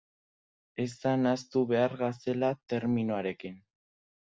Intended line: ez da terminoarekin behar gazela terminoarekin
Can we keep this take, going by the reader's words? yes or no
no